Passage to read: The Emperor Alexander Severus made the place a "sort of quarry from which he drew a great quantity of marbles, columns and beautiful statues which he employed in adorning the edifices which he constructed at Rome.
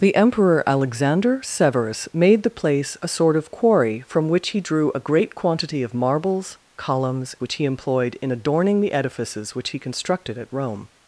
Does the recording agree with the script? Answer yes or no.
no